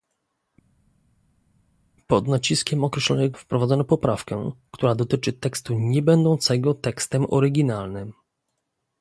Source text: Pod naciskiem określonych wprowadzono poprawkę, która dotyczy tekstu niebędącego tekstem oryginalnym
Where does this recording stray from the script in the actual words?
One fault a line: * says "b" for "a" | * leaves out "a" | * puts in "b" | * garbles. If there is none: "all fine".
all fine